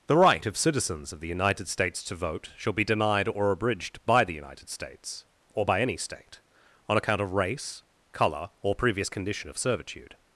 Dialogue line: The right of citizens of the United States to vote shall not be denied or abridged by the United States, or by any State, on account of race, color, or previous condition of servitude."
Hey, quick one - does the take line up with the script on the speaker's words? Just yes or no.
no